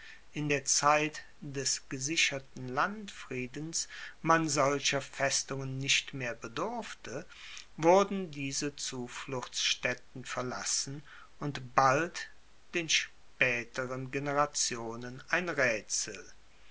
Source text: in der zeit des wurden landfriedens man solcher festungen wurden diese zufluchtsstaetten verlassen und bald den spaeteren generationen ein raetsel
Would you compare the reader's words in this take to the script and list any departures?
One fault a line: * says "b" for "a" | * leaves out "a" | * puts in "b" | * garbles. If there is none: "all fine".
* says "gesicherten" for "wurden"
* puts in "nicht mehr bedurfte"